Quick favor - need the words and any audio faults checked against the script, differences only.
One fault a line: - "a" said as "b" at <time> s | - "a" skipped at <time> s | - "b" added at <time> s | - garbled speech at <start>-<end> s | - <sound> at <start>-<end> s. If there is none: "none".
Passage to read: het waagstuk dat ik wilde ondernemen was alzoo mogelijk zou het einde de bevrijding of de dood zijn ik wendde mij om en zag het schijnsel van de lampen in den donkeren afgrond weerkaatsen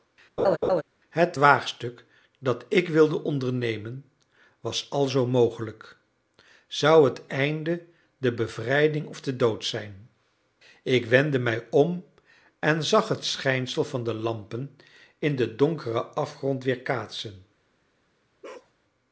- laugh at 0.4-0.8 s
- bark at 18.4-18.7 s